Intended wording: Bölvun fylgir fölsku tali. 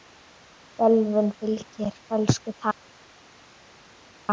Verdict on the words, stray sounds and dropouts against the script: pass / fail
pass